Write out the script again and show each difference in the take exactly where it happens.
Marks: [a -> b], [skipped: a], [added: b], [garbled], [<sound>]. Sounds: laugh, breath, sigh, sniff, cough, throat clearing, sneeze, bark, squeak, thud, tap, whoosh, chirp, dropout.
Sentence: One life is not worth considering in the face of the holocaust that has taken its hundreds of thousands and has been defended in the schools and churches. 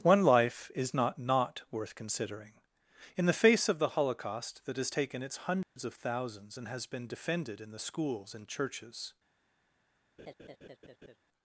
One life is not [added: not] worth considering in the face of the holocaust that has taken its hundreds [dropout] of thousands and has been defended in the schools and churches. [laugh]